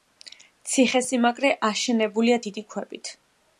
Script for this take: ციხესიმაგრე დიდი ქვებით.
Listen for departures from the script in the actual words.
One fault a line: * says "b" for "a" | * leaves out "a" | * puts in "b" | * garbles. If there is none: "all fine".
* puts in "აშენებულია"